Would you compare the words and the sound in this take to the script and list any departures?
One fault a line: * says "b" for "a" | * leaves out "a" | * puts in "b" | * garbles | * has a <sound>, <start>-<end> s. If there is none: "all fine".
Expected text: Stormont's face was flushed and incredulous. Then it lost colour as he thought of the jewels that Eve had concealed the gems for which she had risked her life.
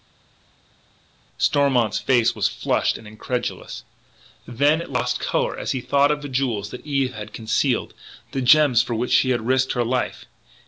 all fine